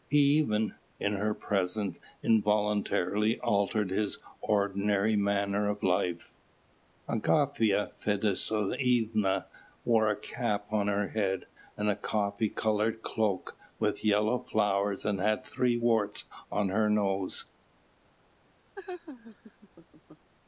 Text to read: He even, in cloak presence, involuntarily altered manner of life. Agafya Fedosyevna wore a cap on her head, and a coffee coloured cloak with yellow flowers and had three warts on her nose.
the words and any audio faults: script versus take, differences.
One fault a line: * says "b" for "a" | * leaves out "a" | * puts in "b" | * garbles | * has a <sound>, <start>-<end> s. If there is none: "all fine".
* says "her" for "cloak"
* puts in "his ordinary"
* has a laugh, 18.7-20.3 s